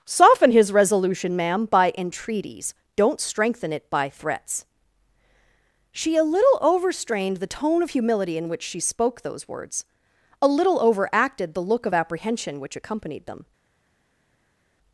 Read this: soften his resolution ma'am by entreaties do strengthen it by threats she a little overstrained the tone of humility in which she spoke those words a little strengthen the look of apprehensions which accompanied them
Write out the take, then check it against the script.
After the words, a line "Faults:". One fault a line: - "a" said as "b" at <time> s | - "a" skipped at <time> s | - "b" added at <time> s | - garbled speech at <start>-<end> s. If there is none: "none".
soften his resolution ma'am by entreaties don't strengthen it by threats she a little overstrained the tone of humility in which she spoke those words a little overacted the look of apprehension which accompanied them
Faults:
- "do" said as "don't" at 3.0 s
- "strengthen" said as "overacted" at 10.8 s
- "apprehensions" said as "apprehension" at 11.9 s